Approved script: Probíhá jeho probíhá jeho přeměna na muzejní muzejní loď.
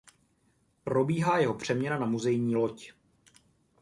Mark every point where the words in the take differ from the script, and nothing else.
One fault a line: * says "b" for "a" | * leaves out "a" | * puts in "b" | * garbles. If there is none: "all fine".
* leaves out "probíhá jeho"
* leaves out "muzejní"